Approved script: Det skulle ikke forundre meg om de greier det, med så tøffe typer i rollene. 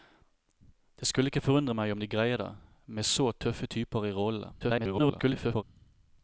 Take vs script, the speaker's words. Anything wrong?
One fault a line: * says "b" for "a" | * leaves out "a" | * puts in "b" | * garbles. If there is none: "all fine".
* garbles